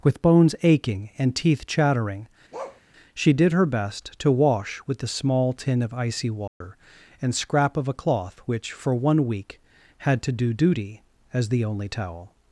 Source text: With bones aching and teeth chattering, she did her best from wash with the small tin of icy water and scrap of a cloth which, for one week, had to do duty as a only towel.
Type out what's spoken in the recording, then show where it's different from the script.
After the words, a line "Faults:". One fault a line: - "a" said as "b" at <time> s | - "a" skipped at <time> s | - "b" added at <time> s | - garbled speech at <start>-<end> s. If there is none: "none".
With bones aching and teeth chattering, she did her best to wash with the small tin of icy water and scrap of a cloth which, for one week, had to do duty as the only towel.
Faults:
- "from" said as "to" at 4.2 s
- "a" said as "the" at 11.5 s